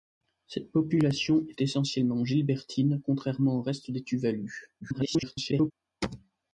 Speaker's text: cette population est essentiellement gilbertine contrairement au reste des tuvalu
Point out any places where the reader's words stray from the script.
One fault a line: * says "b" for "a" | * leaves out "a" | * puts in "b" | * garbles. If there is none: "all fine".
* garbles